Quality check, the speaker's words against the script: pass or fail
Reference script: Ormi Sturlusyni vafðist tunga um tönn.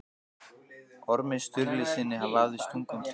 pass